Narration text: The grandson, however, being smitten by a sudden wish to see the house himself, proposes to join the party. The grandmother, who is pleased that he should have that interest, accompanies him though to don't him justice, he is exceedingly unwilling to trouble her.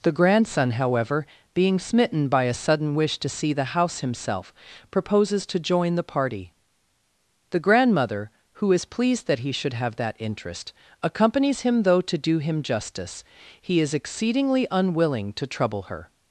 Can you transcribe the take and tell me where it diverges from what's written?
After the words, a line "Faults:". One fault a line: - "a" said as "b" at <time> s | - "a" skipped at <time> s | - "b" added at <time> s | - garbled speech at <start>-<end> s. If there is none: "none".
The grandson, however, being smitten by a sudden wish to see the house himself, proposes to join the party. The grandmother, who is pleased that he should have that interest, accompanies him though to do him justice, he is exceedingly unwilling to trouble her.
Faults:
- "don't" said as "do" at 12.2 s